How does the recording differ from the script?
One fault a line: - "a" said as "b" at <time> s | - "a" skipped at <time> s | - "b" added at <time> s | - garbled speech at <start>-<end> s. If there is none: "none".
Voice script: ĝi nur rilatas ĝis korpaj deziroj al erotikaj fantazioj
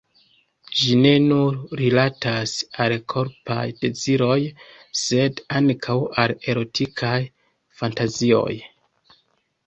- "ne" added at 1.0 s
- "ĝis" said as "al" at 2.9 s
- "sed ankaŭ" added at 5.0 s